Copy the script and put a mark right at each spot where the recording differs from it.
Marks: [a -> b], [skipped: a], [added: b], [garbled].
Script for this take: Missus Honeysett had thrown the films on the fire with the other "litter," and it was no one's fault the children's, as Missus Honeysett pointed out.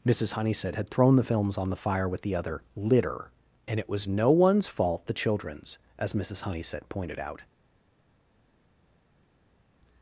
Missus Honeysett had thrown the films on the fire with the other "litter," and it was no one's fault the children's, as Missus Honeysett pointed out.